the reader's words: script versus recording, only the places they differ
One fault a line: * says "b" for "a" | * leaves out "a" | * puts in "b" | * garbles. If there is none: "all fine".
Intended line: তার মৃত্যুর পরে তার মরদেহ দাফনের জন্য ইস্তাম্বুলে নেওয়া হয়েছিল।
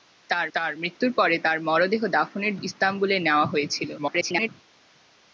* puts in "তার"
* leaves out "জন্য"
* garbles